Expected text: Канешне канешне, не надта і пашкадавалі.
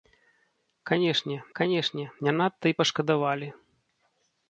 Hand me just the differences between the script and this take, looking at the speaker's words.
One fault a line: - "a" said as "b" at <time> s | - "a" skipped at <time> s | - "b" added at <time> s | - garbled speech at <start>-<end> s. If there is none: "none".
none